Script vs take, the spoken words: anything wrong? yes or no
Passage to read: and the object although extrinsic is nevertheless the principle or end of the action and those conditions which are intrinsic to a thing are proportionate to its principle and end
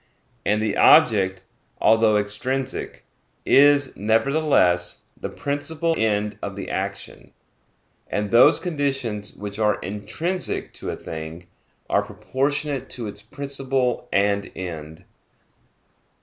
yes